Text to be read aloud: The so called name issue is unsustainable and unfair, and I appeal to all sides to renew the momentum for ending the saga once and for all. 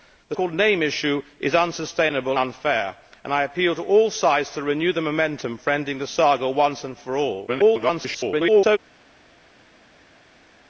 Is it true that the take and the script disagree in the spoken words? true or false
true